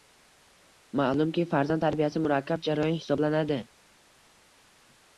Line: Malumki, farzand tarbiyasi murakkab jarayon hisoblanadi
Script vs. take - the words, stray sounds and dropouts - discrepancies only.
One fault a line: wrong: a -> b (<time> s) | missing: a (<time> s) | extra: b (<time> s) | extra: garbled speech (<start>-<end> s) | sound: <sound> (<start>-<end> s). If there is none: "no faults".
no faults